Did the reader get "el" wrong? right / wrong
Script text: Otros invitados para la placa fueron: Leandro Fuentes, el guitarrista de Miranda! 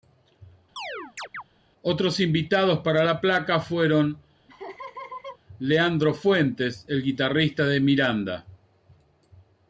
right